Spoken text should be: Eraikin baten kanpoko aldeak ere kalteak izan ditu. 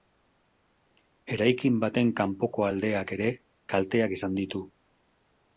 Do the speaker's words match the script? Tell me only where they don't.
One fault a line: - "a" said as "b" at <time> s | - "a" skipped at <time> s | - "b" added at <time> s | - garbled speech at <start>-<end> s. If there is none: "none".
none